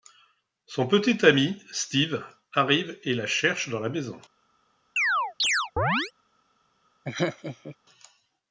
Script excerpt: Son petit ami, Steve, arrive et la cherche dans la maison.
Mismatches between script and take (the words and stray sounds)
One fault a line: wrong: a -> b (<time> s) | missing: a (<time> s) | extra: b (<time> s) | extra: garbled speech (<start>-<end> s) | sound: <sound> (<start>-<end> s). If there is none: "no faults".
sound: chirp (5.0-6.1 s)
sound: laugh (7.1-7.8 s)